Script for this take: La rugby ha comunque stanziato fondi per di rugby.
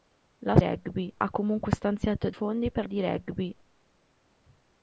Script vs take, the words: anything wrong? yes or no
no